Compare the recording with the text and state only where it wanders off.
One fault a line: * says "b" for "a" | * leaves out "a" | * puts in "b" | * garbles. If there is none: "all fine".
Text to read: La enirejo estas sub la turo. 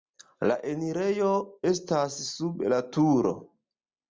all fine